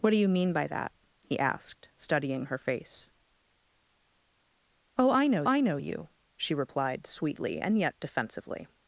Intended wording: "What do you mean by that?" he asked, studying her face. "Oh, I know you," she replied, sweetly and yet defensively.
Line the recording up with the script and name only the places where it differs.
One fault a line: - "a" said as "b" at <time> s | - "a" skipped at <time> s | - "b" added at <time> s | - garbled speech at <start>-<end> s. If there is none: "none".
- "I know" added at 5.4 s